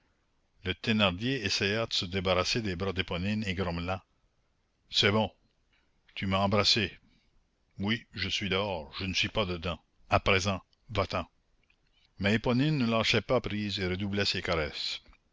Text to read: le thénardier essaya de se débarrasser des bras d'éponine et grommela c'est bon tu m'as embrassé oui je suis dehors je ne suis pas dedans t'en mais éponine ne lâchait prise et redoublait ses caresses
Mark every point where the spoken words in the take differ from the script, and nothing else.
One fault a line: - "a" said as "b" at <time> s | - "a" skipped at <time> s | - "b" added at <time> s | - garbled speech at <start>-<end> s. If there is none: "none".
- "à présent va" added at 10.1 s
- "pas" added at 13.2 s